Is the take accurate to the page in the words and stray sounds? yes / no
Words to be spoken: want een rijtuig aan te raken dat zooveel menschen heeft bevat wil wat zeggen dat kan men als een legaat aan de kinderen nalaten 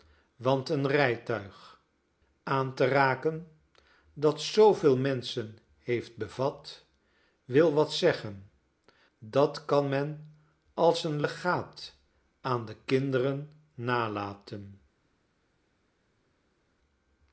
yes